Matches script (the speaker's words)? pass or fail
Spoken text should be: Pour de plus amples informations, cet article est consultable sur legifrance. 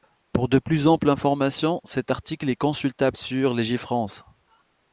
pass